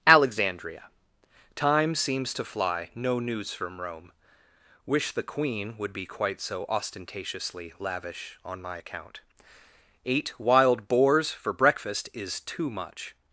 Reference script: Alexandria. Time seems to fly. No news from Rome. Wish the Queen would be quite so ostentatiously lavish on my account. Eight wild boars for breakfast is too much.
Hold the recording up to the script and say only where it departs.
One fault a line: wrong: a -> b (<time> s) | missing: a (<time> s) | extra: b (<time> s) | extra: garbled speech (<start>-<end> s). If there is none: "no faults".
no faults